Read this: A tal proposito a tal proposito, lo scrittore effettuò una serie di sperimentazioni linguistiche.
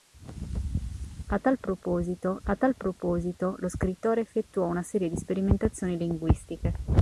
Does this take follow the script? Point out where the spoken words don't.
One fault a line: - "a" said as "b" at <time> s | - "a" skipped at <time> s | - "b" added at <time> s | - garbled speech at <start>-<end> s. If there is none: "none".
none